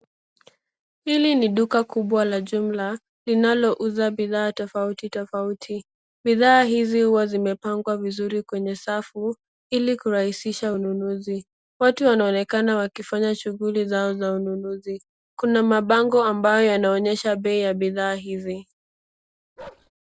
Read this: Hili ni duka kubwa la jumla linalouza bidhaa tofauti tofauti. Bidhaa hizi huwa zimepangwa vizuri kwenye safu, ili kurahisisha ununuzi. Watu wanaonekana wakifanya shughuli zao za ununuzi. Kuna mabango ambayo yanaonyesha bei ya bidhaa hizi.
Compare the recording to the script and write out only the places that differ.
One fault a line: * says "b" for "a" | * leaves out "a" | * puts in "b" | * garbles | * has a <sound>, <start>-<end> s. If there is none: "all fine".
* has a bark, 19.6-19.9 s